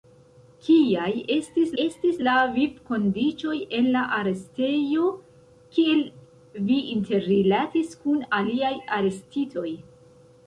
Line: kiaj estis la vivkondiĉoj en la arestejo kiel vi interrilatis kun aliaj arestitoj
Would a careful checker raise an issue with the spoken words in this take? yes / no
yes